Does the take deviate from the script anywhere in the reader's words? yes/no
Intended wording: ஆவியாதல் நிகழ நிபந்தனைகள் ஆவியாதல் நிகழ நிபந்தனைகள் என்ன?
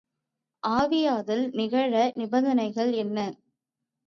yes